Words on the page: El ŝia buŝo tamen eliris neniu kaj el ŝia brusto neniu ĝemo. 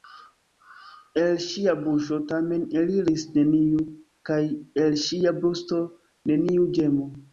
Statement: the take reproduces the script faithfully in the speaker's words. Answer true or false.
true